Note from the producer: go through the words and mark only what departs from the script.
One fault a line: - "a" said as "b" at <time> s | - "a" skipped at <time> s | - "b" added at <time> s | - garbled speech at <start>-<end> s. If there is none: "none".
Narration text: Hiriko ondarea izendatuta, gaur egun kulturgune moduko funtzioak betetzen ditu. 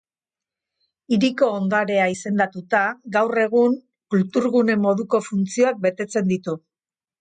none